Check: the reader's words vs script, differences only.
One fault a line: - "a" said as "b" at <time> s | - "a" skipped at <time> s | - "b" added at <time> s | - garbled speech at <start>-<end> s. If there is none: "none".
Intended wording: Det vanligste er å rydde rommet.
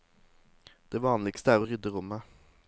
none